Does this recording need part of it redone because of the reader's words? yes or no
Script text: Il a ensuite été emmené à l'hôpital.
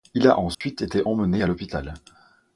no